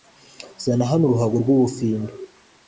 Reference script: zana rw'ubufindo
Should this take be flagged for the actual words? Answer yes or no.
yes